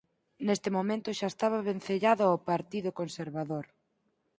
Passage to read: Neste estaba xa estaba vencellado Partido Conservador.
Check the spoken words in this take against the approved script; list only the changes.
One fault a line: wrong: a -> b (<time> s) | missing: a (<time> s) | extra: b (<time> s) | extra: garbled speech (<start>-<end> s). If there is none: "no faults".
wrong: estaba -> momento (0.8 s)
extra: ao (2.3 s)